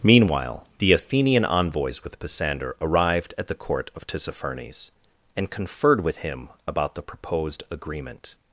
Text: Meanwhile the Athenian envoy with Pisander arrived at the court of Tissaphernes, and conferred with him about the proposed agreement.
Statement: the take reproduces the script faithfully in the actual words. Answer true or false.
false